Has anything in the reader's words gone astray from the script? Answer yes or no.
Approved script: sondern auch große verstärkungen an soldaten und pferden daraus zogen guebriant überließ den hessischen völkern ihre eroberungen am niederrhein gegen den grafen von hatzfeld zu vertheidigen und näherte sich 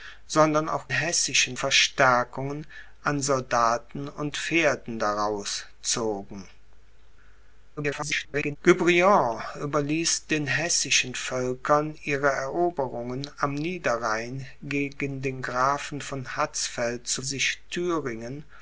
yes